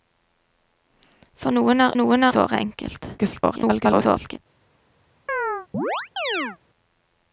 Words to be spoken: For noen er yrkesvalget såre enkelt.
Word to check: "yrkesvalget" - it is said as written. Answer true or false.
false